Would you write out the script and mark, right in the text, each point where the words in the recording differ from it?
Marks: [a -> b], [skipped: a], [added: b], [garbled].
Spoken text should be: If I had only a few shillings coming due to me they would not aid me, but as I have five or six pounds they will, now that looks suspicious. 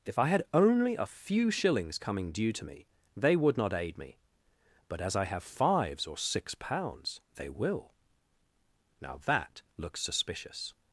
If I had only a few shillings coming due to me they would not aid me, but as I have [five -> fives] or six pounds they will, now that looks suspicious.